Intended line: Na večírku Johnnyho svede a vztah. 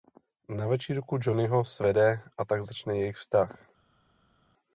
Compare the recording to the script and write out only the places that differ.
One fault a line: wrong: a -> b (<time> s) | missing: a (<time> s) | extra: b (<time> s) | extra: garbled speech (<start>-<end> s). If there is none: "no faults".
extra: tak začne jejich (2.5 s)